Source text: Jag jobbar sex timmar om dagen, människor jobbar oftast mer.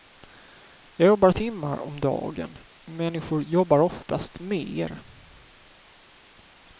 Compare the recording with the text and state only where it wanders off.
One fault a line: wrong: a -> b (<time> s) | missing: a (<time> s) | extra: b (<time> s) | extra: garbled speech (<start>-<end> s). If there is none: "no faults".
missing: sex (1.3 s)